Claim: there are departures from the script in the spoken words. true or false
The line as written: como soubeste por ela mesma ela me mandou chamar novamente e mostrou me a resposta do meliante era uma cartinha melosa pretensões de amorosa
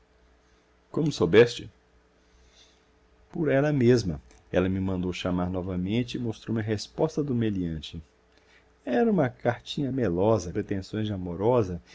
false